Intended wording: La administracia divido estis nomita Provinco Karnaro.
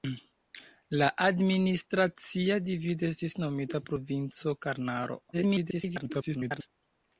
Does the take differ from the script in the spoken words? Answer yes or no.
yes